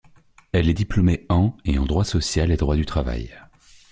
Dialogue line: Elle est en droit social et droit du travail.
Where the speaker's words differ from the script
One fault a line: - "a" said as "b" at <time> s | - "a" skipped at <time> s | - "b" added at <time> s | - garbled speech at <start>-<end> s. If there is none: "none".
- "diplômée en et" added at 0.7 s